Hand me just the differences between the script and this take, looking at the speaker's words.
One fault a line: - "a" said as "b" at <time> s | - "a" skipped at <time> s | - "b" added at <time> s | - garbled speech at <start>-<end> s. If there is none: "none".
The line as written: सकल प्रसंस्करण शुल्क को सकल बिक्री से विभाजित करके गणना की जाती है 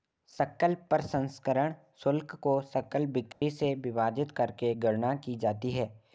none